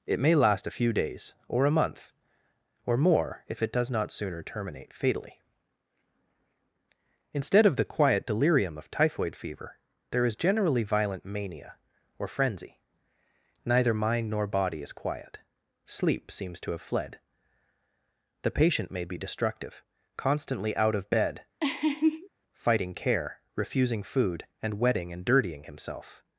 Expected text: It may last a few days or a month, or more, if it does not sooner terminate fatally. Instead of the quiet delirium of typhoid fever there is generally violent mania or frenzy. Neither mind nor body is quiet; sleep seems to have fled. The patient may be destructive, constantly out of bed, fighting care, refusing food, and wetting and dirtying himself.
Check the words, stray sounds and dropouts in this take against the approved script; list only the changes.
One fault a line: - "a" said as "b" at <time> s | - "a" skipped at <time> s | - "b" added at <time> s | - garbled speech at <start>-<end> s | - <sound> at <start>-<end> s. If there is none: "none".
- laugh at 21.6-22.3 s